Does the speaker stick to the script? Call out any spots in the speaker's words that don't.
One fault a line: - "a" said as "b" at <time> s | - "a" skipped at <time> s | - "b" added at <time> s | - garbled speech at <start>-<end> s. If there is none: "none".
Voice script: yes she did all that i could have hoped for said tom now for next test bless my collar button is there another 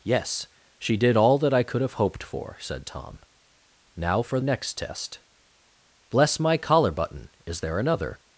none